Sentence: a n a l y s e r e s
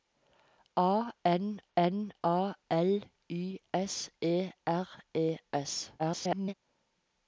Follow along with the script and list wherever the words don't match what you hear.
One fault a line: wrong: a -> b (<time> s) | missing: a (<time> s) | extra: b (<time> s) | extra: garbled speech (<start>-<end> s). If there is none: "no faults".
extra: n (1.7 s)
extra: garbled speech (6.0-6.5 s)